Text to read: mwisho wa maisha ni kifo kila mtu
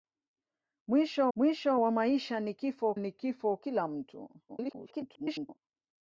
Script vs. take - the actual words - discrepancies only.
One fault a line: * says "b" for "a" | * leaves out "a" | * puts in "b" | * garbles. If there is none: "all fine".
* puts in "mwisho"
* puts in "ni kifo"
* garbles